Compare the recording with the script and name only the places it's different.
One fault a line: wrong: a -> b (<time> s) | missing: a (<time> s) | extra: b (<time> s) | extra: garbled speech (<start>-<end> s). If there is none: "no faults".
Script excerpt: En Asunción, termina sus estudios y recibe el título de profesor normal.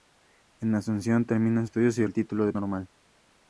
missing: sus (1.7 s)
missing: recibe (2.1 s)
missing: profesor (2.5 s)